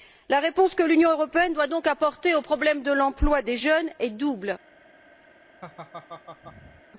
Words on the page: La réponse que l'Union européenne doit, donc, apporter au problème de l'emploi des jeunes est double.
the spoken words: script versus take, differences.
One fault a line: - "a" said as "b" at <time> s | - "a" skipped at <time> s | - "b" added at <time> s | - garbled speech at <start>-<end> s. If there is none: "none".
none